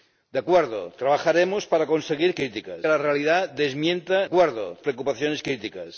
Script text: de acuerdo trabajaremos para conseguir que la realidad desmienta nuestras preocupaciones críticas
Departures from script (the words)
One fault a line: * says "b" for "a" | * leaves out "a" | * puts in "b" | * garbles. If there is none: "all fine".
* says "críticas" for "que"
* says "acuerdo" for "nuestras"